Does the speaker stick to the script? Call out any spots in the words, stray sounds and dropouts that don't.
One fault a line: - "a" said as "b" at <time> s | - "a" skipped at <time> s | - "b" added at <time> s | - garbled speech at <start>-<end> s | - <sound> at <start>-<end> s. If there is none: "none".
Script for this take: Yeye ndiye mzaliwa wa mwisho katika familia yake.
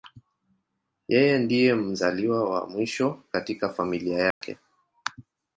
- dropout at 4.3-4.4 s